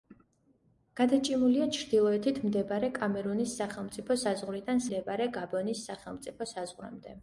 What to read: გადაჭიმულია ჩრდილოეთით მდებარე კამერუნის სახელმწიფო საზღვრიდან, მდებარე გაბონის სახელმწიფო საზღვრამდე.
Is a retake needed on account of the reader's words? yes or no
no